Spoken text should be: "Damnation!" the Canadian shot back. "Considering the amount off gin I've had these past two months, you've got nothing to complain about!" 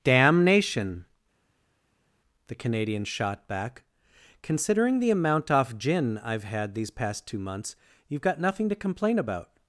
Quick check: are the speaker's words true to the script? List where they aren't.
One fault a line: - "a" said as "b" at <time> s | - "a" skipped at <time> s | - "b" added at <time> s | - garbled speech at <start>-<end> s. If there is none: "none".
none